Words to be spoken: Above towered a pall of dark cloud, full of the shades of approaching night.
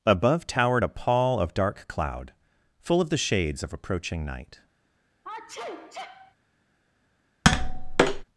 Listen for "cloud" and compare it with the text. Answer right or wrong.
right